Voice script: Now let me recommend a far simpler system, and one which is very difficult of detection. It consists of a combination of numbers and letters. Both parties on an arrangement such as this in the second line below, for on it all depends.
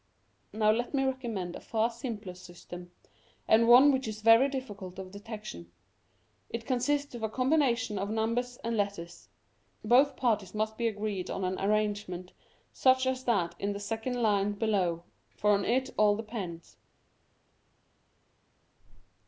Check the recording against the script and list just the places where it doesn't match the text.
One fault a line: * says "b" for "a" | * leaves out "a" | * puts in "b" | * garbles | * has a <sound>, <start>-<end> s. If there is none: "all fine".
* puts in "must be agreed"
* says "that" for "this"